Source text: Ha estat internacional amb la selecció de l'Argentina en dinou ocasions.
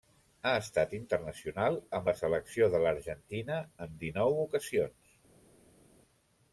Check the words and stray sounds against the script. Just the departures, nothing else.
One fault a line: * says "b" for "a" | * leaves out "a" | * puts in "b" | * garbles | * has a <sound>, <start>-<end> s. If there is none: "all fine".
all fine